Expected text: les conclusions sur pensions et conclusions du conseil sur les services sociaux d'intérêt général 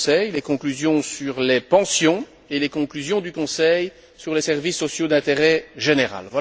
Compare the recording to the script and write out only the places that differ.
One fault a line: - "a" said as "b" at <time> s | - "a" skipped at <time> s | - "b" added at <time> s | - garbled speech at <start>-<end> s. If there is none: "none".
- "les" added at 1.4 s
- "les" added at 2.6 s